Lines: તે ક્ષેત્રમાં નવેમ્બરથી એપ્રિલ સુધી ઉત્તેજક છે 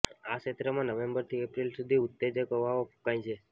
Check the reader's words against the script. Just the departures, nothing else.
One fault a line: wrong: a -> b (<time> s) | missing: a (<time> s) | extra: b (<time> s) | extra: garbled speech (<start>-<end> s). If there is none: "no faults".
wrong: તે -> આ (0.2 s)
extra: હવાઓ ફૂંકાય (2.6 s)